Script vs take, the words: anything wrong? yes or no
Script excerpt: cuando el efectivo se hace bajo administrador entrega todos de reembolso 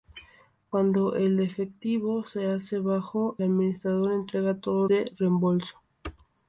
no